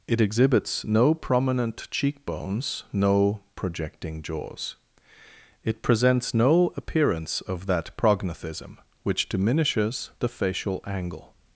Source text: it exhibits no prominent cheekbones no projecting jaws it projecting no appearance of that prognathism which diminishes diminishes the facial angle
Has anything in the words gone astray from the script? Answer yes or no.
yes